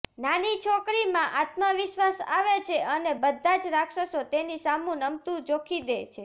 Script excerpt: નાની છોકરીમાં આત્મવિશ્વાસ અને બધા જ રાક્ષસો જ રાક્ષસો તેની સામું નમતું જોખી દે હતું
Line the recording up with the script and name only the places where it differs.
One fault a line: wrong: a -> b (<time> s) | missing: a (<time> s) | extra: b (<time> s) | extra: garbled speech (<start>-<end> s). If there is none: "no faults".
extra: આવે છે (2.3 s)
missing: જ રાક્ષસો (4.2 s)
wrong: હતું -> છે (6.0 s)